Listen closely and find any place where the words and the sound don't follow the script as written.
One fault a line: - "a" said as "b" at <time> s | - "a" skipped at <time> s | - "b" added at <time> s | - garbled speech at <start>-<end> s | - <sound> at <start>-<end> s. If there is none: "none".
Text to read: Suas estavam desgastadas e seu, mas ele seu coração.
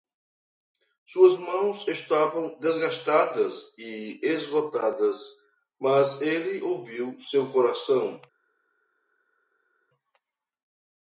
- "mãos" added at 1.4 s
- "seu" said as "esgotadas" at 4.2 s
- "ouviu" added at 6.6 s